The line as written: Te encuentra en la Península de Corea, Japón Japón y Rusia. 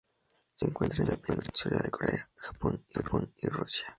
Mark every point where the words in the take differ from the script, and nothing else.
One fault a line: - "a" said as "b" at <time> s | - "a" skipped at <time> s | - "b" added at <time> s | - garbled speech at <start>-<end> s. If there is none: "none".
- "Te" said as "Se" at 0.5 s
- "Japón" skipped at 2.8 s